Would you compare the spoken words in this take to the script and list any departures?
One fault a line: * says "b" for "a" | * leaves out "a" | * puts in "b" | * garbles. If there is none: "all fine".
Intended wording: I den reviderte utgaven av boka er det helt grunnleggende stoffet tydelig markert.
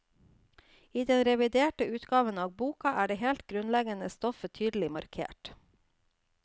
all fine